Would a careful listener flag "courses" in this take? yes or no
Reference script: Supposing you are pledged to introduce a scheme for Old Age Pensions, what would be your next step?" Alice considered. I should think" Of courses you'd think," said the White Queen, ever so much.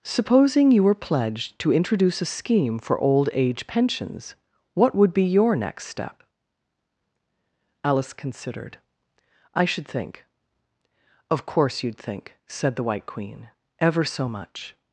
yes